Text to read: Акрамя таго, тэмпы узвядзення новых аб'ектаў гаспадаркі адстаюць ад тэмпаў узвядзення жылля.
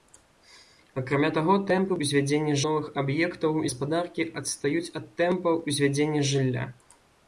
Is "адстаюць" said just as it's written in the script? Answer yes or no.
yes